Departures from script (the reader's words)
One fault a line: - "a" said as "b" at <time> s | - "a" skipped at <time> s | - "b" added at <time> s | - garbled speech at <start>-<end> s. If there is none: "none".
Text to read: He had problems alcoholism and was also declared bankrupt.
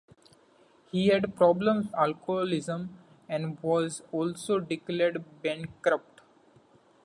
none